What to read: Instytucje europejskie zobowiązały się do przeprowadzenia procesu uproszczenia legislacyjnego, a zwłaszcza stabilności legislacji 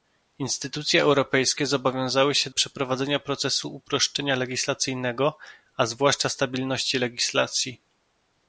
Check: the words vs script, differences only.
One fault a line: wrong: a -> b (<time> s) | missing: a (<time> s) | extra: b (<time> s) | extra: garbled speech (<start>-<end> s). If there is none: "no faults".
missing: do (2.5 s)